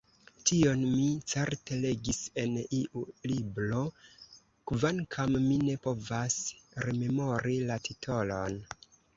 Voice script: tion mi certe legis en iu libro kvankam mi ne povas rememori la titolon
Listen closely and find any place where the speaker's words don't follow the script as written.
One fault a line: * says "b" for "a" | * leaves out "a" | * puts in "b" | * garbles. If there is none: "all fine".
all fine